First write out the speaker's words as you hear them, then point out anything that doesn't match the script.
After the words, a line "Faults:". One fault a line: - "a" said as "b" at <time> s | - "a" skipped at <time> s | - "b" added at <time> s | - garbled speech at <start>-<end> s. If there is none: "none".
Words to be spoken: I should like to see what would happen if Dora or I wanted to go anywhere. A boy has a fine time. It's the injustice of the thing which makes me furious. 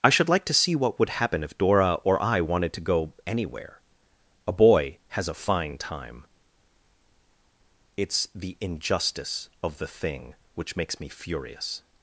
I should like to see what would happen if Dora or I wanted to go anywhere. A boy has a fine time. It's the injustice of the thing which makes me furious.
Faults:
none